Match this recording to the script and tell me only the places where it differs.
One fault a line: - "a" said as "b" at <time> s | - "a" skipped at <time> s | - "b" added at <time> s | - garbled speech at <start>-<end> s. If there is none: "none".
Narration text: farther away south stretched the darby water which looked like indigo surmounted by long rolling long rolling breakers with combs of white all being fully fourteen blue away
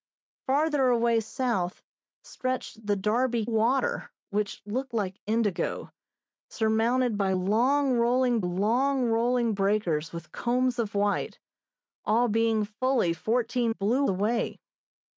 none